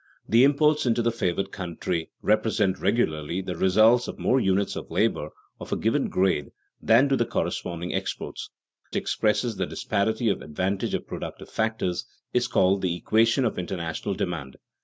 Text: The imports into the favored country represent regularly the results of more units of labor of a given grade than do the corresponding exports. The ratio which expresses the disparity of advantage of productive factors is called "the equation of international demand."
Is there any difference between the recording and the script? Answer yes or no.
yes